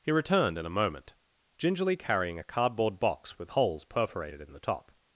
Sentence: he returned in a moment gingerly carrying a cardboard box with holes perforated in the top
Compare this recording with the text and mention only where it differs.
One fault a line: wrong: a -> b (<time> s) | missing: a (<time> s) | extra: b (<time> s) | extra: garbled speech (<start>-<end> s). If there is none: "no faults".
no faults